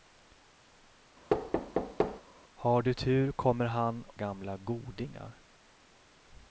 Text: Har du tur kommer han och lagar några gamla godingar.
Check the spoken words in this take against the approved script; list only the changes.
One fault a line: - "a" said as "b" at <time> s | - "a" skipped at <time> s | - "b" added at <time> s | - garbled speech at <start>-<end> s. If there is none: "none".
- "och lagar några" skipped at 4.0 s